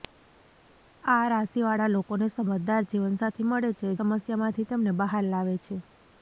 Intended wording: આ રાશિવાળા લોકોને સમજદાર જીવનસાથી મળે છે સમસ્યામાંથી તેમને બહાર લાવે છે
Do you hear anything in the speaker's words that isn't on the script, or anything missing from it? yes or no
no